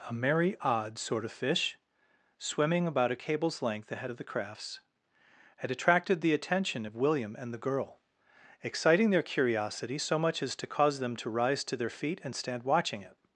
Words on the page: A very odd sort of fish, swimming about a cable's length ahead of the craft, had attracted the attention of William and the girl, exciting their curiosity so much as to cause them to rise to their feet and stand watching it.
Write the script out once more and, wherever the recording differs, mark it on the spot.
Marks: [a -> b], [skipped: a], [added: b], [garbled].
A [very -> merry] odd sort of fish, swimming about a cable's length ahead of the [craft, -> crafts] had attracted the attention of William and the girl, exciting their curiosity so much as to cause them to rise to their feet and stand watching it.